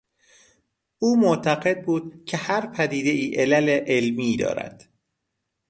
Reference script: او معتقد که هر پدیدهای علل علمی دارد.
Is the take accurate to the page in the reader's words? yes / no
no